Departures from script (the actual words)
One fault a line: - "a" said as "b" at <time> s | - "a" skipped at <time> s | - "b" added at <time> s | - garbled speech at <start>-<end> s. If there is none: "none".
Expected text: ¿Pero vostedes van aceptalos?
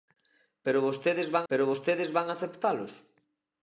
- "pero vostedes van" added at 1.5 s